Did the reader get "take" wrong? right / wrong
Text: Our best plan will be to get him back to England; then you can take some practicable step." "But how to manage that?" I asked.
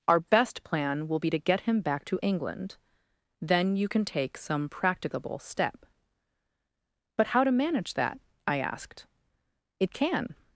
right